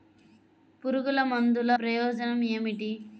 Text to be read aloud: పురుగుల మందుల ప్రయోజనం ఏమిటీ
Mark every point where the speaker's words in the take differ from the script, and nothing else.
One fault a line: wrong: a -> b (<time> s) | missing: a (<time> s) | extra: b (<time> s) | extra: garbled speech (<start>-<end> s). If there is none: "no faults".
no faults